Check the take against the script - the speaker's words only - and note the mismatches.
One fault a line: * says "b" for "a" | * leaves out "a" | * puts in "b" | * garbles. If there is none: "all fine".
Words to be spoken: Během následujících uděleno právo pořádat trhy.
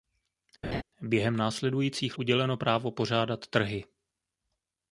all fine